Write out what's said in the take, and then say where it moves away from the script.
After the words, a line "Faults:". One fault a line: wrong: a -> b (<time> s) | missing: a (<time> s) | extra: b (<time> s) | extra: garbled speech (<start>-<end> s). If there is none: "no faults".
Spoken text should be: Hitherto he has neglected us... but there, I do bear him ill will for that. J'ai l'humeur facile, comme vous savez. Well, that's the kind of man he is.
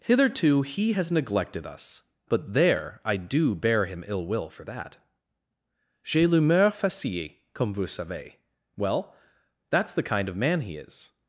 Hitherto he has neglected us... but there, I do bear him ill will for that. J'ai l'humeur facile, comme vous savez. Well, that's the kind of man he is.
Faults:
no faults